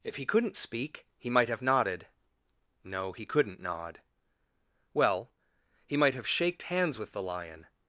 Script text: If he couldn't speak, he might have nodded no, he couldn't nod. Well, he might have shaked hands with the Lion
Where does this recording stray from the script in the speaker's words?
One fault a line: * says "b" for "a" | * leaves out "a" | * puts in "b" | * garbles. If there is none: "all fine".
all fine